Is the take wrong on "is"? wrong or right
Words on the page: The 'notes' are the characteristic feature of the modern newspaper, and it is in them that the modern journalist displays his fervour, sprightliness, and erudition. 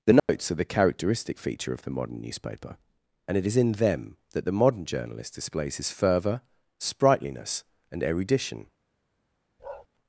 right